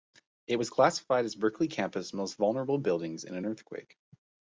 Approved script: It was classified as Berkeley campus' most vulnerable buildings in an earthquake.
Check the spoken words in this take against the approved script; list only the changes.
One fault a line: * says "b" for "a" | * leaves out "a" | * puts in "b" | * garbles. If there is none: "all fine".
all fine